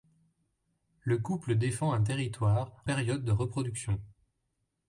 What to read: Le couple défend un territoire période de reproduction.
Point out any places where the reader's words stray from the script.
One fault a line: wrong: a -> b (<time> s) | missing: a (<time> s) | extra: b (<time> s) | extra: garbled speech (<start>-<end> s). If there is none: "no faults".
no faults